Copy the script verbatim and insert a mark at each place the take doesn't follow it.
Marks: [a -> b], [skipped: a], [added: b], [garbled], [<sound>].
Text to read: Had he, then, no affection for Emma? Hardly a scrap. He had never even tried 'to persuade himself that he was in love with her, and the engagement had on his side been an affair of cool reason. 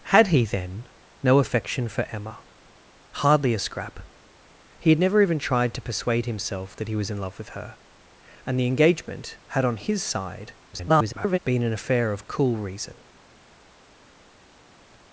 Had he, then, no affection for Emma? Hardly a scrap. He had never even tried 'to persuade himself that he was in love with her, and the engagement had on his side [garbled] been an affair of cool reason.